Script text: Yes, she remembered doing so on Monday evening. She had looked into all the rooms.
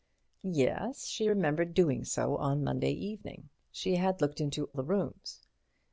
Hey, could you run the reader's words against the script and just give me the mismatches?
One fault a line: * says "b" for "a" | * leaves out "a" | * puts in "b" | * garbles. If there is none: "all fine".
* leaves out "all"